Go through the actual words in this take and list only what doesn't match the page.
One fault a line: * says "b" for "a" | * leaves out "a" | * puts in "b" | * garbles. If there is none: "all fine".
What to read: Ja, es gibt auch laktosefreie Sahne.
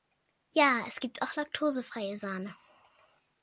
all fine